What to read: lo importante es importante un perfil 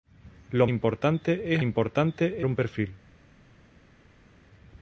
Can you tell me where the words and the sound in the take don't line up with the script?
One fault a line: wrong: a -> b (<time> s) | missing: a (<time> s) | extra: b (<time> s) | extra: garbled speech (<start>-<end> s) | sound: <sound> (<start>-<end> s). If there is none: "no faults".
no faults